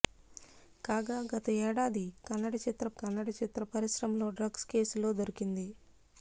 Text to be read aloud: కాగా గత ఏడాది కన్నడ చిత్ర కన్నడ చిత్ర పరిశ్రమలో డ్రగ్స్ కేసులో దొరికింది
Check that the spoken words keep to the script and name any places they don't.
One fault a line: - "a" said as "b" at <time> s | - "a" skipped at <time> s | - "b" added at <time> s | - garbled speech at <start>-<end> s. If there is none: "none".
none